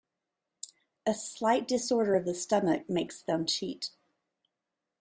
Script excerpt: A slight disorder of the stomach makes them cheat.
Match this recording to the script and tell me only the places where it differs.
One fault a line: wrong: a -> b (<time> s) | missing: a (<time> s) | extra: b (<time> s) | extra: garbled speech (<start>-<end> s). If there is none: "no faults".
no faults